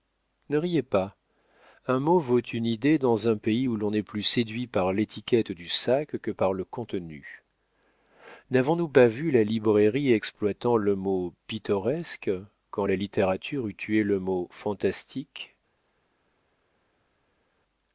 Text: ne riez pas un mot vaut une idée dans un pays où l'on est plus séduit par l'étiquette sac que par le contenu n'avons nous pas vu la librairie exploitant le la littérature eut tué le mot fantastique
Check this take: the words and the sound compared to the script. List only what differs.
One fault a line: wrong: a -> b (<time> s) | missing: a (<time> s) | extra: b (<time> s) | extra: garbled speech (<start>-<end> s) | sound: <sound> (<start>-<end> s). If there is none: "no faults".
extra: du (5.5 s)
extra: mot pittoresque quand (11.0 s)